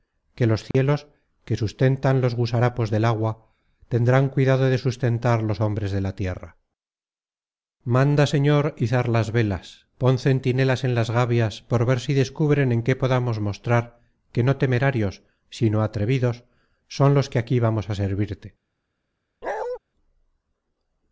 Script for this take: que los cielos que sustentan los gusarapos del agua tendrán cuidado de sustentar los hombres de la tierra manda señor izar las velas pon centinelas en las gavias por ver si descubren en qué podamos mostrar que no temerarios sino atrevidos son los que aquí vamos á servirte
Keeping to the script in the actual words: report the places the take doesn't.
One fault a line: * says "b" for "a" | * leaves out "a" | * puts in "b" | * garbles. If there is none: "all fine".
all fine